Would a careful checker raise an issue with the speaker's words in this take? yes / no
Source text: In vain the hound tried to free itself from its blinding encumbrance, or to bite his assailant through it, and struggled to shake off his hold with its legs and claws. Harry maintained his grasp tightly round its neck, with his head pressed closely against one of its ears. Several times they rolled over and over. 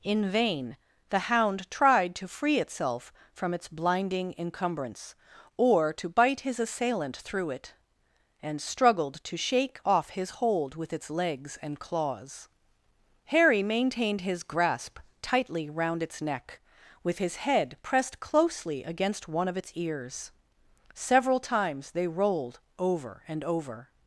no